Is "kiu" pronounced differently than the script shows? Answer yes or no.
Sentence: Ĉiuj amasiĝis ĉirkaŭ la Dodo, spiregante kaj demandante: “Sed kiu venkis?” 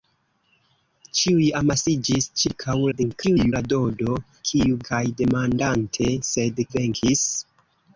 yes